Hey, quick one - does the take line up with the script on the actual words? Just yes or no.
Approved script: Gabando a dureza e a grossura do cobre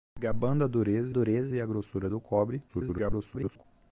no